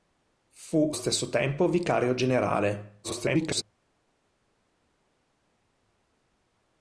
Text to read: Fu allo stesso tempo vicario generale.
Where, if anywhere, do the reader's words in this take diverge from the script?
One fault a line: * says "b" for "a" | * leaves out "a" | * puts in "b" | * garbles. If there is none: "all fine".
* leaves out "allo"
* garbles